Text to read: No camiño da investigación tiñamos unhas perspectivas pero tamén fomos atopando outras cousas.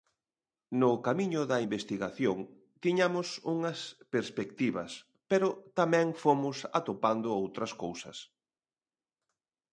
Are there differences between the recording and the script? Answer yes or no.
no